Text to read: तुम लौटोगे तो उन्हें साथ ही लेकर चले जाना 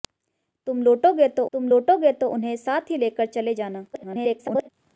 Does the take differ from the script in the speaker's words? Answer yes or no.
yes